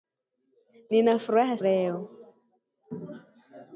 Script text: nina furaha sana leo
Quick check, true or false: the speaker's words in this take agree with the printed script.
false